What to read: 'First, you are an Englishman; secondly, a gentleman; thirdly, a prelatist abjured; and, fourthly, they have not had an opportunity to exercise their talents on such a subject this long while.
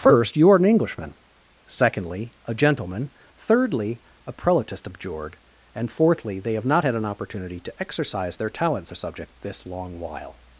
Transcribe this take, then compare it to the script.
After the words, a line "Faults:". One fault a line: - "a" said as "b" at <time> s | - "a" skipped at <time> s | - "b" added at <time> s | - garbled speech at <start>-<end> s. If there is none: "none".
'First, you are an Englishman; secondly, a gentleman; thirdly, a prelatist abjured; and, fourthly, they have not had an opportunity to exercise their talents a subject this long while.
Faults:
- "on such" skipped at 8.9 s